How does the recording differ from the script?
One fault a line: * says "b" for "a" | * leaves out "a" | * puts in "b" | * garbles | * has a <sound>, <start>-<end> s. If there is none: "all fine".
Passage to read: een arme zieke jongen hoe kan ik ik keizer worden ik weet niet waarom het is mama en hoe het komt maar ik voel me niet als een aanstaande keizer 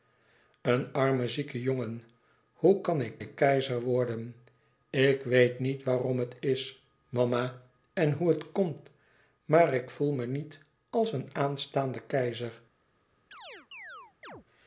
* has a chirp, 13.3-14.4 s